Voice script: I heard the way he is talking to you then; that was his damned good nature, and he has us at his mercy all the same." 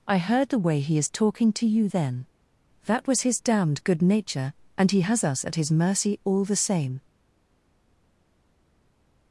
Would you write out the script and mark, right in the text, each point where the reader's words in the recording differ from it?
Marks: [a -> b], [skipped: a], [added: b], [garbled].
I heard the way he is talking to you then; that was his damned good nature, and he has us at his mercy all the same."